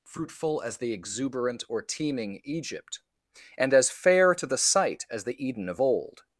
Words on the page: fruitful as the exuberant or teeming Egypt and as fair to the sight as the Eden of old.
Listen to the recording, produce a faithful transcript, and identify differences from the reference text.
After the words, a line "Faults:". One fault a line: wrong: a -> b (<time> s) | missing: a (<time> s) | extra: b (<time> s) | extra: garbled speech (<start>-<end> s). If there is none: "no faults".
fruitful as the exuberant or teeming Egypt and as fair to the sight as the Eden of old.
Faults:
no faults